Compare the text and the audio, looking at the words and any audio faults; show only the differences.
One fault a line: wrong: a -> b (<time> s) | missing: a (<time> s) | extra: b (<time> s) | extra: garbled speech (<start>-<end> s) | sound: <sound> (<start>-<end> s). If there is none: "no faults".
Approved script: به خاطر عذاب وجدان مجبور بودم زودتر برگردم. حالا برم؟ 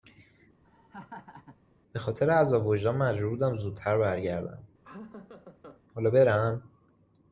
sound: laugh (0.6-1.6 s)
sound: laugh (4.8-5.8 s)